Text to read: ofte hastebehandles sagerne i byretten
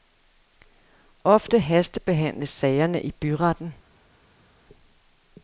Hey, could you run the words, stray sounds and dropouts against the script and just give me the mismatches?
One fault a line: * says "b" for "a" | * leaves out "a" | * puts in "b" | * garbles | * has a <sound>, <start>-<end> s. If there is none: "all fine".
all fine